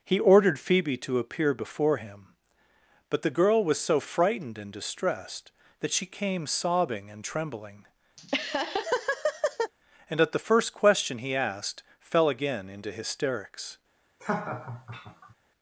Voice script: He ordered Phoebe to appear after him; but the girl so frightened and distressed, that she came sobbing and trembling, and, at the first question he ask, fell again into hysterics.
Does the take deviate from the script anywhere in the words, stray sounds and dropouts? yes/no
yes